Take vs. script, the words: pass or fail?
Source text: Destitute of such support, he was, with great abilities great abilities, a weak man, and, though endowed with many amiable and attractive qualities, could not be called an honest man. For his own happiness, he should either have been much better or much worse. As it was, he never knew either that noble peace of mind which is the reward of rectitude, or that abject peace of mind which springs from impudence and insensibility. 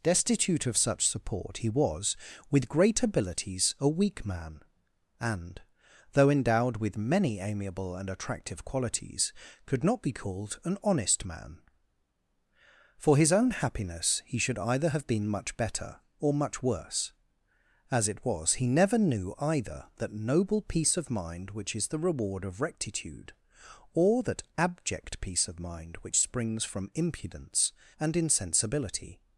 fail